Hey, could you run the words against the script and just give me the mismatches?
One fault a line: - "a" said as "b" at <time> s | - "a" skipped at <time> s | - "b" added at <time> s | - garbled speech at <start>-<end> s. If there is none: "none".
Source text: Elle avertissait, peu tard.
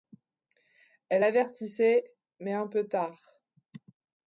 - "mais un" added at 2.4 s